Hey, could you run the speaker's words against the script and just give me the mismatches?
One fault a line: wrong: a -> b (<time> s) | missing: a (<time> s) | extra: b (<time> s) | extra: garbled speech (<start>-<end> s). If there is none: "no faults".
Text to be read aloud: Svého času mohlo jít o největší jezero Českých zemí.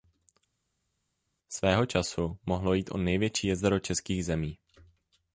no faults